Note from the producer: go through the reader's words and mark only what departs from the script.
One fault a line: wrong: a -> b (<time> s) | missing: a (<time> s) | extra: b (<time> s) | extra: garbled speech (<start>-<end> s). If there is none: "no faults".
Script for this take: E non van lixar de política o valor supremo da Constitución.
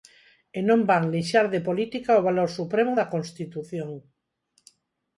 no faults